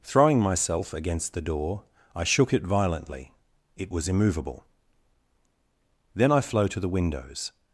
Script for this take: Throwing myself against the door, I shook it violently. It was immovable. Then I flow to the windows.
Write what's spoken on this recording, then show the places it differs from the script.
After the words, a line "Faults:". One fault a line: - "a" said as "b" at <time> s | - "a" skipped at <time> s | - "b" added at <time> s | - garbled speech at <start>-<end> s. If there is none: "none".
Throwing myself against the door, I shook it violently. It was immovable. Then I flow to the windows.
Faults:
none